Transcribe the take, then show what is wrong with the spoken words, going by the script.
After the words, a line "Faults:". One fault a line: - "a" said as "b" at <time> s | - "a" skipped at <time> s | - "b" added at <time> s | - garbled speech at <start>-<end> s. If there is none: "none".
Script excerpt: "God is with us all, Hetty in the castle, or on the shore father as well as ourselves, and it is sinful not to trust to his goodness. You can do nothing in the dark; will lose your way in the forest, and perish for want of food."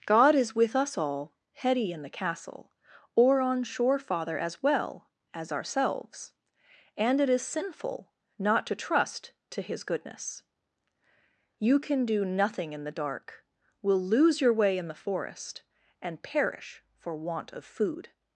"God is with us all, Hetty in the castle, or on shore father as well as ourselves, and it is sinful not to trust to his goodness. You can do nothing in the dark; will lose your way in the forest, and perish for want of food."
Faults:
- "the" skipped at 3.6 s